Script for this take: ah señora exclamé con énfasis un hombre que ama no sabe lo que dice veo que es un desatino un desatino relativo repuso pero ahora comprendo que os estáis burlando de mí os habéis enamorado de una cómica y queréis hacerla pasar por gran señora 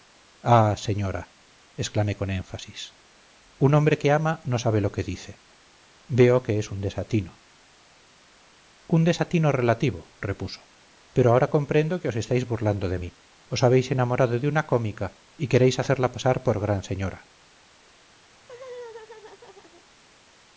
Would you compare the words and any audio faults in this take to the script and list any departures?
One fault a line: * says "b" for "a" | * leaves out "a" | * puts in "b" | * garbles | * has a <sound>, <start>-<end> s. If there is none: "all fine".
* has a laugh, 18.3-19.9 s